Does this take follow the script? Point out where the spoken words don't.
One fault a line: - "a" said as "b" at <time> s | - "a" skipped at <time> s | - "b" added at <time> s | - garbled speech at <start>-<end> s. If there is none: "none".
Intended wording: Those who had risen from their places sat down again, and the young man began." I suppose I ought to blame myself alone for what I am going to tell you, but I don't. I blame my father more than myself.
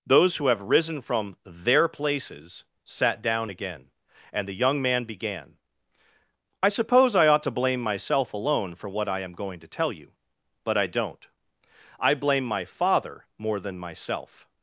- "had" said as "have" at 0.5 s